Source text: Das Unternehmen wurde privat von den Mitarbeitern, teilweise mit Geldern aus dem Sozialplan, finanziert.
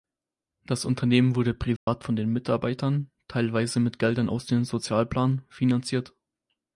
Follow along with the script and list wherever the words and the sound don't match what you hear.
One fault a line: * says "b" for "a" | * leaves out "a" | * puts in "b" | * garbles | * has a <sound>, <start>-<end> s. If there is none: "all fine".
* has a dropout, 1.8-1.9 s